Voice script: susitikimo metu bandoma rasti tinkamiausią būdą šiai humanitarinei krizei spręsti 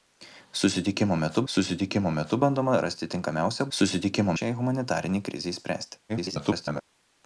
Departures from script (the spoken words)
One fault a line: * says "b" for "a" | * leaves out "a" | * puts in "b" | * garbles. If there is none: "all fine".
* puts in "susitikimo metu"
* says "susitikimo" for "būdą"
* garbles